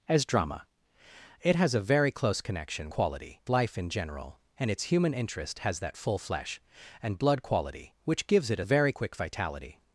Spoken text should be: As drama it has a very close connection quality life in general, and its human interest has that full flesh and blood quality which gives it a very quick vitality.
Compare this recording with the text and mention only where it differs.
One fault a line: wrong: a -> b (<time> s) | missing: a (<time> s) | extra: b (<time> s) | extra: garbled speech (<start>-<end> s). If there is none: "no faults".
no faults